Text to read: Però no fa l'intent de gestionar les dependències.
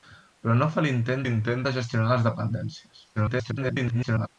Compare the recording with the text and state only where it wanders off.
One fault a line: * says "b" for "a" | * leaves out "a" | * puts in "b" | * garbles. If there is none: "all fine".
* puts in "l'intent"
* garbles